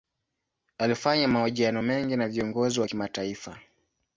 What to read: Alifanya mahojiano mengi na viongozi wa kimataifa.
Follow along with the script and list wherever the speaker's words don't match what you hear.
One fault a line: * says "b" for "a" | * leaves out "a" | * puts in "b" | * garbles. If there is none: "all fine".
all fine